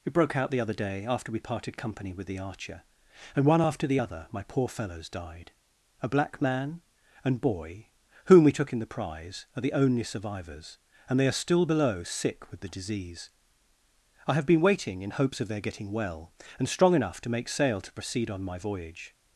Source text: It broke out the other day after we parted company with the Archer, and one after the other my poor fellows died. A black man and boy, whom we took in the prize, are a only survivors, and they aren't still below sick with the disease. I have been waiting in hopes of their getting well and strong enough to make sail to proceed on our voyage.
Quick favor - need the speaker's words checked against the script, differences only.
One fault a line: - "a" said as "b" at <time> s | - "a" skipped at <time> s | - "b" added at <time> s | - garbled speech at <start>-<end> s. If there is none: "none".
- "a" said as "the" at 9.6 s
- "aren't" said as "are" at 11.3 s
- "our" said as "my" at 18.4 s